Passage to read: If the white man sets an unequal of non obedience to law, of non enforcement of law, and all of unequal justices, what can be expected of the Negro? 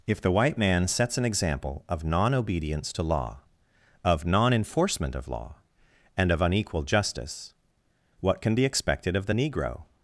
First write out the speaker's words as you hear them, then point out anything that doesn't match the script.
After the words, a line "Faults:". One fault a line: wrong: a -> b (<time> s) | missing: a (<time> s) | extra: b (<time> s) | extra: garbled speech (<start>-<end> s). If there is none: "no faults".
If the white man sets an example of non obedience to law, of non enforcement of law, and of unequal justice, what can be expected of the Negro?
Faults:
wrong: unequal -> example (1.2 s)
missing: all (6.3 s)
wrong: justices -> justice (6.8 s)